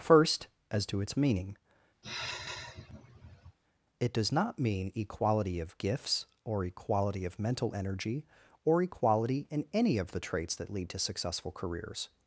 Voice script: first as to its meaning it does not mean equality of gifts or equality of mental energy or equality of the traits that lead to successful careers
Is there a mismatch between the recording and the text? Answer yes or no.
yes